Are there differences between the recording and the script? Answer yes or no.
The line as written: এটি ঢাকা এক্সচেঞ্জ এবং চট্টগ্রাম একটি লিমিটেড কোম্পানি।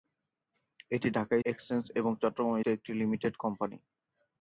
no